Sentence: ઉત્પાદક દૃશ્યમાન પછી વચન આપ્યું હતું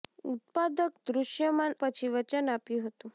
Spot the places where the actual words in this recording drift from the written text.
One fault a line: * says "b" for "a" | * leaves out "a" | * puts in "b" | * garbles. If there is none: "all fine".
all fine